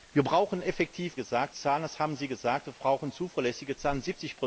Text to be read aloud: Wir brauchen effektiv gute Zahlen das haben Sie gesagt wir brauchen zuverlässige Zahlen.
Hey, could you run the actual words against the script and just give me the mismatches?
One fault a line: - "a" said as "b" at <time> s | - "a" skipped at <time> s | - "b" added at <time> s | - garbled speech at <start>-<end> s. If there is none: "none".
- "gute" said as "gesagt" at 1.2 s